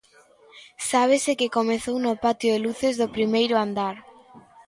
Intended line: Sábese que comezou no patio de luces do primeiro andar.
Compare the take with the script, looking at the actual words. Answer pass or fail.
pass